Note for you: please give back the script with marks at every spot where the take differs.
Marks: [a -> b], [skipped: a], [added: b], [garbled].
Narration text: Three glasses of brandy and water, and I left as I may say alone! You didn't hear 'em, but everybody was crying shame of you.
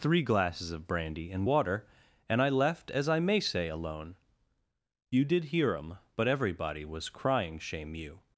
Three glasses of brandy and water, and I left as I may say alone! You [didn't -> did] hear 'em, but everybody was crying shame [skipped: of] you.